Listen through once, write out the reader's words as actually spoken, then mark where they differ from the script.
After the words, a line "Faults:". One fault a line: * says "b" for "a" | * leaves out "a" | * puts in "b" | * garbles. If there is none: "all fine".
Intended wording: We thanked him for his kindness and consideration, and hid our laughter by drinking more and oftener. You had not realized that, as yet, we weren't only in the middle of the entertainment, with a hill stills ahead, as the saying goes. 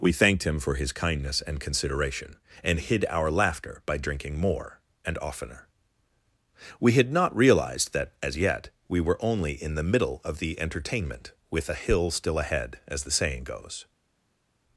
We thanked him for his kindness and consideration, and hid our laughter by drinking more and oftener. We had not realized that, as yet, we were only in the middle of the entertainment, with a hill still ahead, as the saying goes.
Faults:
* says "We" for "You"
* says "were" for "weren't"
* says "still" for "stills"